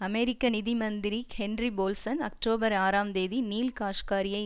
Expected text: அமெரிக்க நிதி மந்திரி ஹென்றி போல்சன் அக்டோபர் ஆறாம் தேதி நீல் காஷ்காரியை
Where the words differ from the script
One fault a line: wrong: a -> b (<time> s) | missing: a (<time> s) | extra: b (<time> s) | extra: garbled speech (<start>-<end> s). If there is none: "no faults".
no faults